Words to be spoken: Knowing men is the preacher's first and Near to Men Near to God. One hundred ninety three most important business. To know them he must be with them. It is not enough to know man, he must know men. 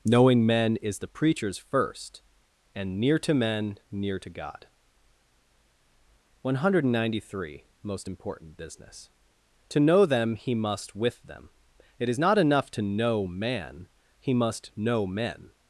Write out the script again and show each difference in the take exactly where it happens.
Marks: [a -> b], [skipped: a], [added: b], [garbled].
Knowing men is the preacher's first and Near to Men Near to God. One hundred ninety three most important business. To know them he must [skipped: be] with them. It is not enough to know man, he must know men.